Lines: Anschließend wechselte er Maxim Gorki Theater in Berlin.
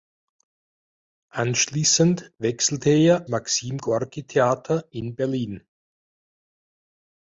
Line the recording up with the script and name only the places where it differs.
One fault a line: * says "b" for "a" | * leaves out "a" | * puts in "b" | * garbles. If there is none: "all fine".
all fine